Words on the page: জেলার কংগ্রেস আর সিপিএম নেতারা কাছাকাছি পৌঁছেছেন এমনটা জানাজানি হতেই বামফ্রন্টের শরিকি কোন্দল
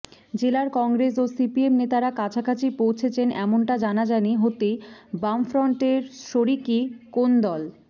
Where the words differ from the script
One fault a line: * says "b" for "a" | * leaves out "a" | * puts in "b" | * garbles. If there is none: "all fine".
* says "ও" for "আর"